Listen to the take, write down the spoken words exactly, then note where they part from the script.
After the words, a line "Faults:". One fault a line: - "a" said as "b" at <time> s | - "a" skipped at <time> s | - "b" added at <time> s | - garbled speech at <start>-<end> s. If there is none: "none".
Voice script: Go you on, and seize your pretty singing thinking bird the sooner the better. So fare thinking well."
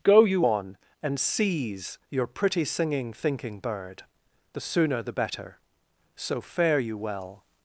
Go you on, and seize your pretty singing thinking bird the sooner the better. So fare you well."
Faults:
- "thinking" said as "you" at 6.8 s